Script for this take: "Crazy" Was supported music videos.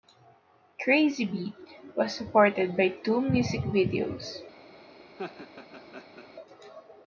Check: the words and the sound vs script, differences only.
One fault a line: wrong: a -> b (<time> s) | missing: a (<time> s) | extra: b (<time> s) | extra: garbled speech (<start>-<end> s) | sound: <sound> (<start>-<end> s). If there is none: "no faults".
extra: Beat (1.2 s)
extra: by two (2.8 s)
sound: laugh (5.2-6.3 s)